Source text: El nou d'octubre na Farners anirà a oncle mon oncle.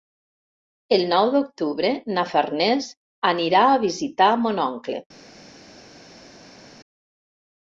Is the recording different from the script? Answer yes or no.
yes